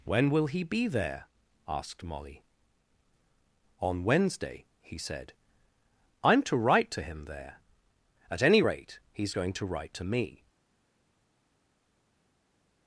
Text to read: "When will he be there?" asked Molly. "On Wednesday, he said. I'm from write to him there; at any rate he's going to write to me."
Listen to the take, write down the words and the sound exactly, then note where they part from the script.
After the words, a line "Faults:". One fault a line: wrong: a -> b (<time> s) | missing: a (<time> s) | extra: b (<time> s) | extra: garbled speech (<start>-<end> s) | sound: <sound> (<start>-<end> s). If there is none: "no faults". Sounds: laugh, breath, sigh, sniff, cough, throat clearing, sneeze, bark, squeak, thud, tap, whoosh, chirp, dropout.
"When will he be there?" asked Molly. "On Wednesday, he said. I'm to write to him there; at any rate he's going to write to me."
Faults:
wrong: from -> to (6.4 s)